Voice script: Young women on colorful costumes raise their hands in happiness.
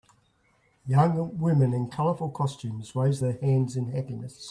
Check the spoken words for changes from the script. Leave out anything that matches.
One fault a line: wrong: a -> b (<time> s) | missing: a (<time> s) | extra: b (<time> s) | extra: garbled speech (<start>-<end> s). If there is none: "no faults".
wrong: on -> in (1.7 s)